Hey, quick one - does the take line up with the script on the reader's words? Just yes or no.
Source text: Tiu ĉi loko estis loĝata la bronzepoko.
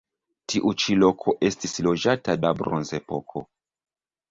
yes